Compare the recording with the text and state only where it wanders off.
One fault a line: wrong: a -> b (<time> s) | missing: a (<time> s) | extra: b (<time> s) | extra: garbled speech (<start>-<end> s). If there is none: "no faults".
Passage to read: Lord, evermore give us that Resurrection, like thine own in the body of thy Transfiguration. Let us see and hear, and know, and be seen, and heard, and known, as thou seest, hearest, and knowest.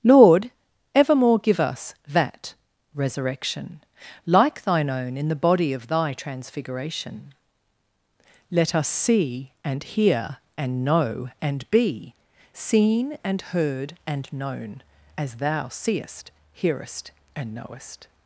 no faults